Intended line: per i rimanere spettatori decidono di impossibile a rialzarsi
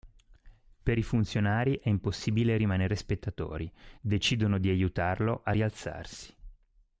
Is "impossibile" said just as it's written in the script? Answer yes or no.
no